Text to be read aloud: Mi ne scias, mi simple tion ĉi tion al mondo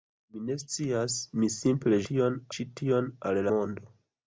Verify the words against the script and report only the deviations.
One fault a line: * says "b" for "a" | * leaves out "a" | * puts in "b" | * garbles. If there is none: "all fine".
all fine